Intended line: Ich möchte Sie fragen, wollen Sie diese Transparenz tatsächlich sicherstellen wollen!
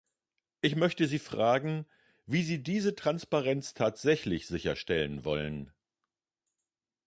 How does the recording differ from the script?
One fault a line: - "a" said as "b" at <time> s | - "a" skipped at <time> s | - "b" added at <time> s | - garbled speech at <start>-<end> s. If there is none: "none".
- "wollen" said as "wie" at 2.2 s